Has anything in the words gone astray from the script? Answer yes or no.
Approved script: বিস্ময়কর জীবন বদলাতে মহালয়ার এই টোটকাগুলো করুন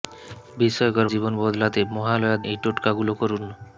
no